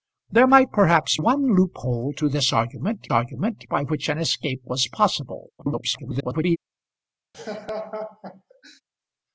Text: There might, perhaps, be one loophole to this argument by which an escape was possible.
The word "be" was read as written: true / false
false